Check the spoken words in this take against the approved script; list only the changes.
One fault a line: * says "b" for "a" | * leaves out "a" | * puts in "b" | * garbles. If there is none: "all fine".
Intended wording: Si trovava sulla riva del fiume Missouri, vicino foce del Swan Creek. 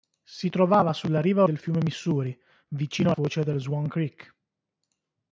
all fine